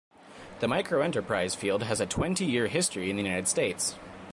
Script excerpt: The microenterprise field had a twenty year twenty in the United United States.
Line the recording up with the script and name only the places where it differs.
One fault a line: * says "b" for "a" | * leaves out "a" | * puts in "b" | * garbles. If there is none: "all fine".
* says "has" for "had"
* says "history" for "twenty"
* leaves out "United"